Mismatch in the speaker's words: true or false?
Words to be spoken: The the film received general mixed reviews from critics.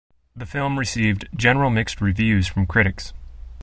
true